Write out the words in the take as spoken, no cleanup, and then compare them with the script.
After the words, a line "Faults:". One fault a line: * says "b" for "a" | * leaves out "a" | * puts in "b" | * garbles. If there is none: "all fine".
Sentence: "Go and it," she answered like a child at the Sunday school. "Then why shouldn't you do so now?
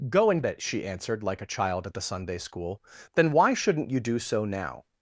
"Go and it," she answered like a child at the Sunday school. "Then why shouldn't you do so now?
Faults:
all fine